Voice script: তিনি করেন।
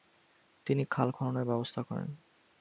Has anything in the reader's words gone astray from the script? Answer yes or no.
yes